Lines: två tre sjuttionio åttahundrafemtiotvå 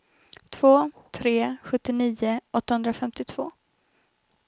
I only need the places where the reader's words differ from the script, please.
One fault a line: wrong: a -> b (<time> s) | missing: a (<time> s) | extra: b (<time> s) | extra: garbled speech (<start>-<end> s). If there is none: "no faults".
no faults